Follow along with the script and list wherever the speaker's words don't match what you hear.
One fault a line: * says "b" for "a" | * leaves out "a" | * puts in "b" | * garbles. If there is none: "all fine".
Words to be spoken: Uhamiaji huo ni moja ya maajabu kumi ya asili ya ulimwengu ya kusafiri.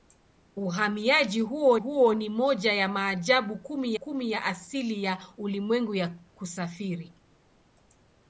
* puts in "huo"
* puts in "kumi"